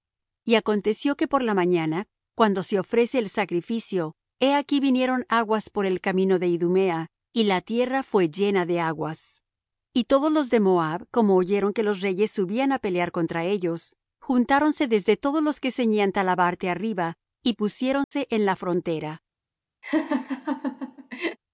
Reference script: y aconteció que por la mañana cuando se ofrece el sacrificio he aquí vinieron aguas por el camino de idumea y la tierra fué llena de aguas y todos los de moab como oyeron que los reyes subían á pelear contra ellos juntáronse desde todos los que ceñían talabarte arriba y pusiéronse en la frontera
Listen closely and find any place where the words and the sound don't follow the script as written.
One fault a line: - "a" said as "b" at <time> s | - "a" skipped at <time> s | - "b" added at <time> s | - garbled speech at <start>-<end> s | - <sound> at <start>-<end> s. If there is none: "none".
- dropout at 18.0-18.1 s
- laugh at 19.8-21.4 s